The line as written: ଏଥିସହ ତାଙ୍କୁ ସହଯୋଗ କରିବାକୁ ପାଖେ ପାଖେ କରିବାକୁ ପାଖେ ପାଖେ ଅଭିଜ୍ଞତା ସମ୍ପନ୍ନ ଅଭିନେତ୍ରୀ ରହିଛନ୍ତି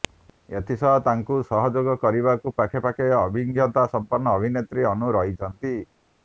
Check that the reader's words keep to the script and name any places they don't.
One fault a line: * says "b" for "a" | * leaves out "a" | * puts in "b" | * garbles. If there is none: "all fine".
* leaves out "କରିବାକୁ ପାଖେ ପାଖେ"
* puts in "ଅନୁ"